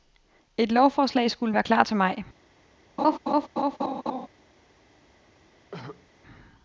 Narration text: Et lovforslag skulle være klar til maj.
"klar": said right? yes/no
yes